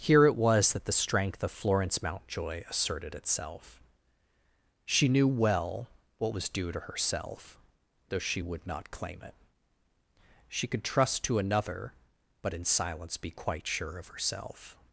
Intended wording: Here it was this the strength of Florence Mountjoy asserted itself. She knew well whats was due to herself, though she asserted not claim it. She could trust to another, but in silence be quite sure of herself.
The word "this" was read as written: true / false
false